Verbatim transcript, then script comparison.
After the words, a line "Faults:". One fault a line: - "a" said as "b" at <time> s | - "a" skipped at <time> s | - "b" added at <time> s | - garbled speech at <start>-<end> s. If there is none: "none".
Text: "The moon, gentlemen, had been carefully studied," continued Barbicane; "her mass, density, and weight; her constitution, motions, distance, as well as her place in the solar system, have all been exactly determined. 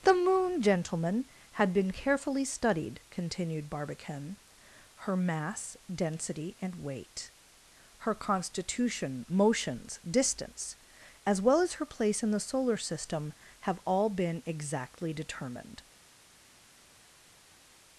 "The moon, gentlemen, had been carefully studied," continued Barbicane; "her mass, density, and weight; her constitution, motions, distance, as well as her place in the solar system, have all been exactly determined.
Faults:
none